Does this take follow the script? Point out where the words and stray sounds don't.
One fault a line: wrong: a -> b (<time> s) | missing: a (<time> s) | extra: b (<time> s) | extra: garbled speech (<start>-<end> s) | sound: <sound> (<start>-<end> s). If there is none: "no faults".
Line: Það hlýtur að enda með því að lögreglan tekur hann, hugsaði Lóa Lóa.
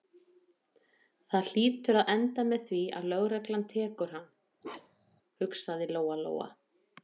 sound: bark (4.6-5.2 s)